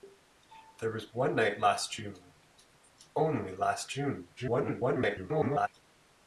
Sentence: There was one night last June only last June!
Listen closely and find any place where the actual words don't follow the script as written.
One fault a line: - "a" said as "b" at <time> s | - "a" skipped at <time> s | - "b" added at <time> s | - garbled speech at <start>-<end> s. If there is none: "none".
- garbled speech at 4.4-5.7 s